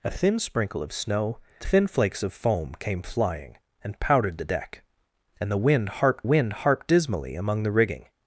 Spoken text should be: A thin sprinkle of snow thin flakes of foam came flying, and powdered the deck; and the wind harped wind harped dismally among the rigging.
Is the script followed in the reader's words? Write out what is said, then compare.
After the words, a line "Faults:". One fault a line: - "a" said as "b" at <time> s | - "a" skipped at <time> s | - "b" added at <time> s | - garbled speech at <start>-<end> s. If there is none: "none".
A thin sprinkle of snow thin flakes of foam came flying, and powdered the deck; and the wind harped wind harped dismally among the rigging.
Faults:
none